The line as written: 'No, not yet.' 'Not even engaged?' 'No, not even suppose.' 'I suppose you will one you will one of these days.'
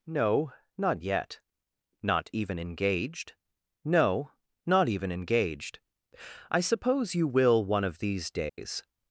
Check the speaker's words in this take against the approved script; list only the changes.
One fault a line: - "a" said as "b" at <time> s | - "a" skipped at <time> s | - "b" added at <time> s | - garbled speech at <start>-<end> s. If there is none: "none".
- "suppose" said as "engaged" at 5.1 s
- "you will one" skipped at 7.8 s